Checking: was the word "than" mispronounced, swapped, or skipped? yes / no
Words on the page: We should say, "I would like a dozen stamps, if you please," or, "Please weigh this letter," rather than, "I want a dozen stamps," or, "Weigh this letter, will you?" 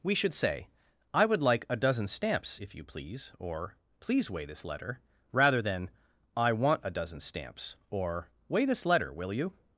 no